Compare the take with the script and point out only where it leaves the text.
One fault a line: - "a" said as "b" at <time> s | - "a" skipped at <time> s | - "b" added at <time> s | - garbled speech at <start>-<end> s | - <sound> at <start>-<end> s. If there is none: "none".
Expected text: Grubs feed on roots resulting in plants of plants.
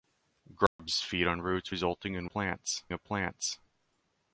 - dropout at 0.7-0.8 s